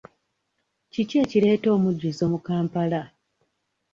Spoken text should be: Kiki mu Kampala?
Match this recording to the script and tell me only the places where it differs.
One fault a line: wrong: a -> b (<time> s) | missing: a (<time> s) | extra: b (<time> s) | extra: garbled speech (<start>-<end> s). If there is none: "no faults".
extra: ekireeta omujjuzo (1.2 s)